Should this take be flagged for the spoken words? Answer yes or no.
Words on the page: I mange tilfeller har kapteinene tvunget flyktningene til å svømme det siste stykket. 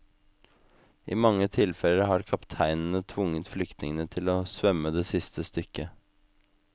no